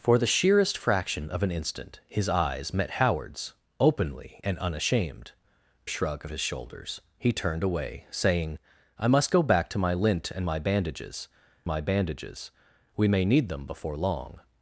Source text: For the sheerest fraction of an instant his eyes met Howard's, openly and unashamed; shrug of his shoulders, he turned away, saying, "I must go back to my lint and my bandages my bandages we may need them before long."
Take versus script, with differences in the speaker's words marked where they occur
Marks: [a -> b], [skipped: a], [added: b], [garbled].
For the sheerest fraction of an instant his eyes met Howard's, openly and unashamed; shrug of his shoulders, he turned away, saying, "I must go back to my lint and my bandages my bandages we may need them before long."